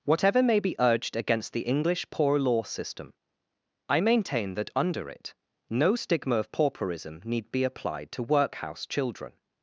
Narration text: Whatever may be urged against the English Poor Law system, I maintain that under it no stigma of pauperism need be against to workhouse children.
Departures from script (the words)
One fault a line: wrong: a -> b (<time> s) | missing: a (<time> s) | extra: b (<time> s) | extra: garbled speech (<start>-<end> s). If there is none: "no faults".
wrong: against -> applied (7.6 s)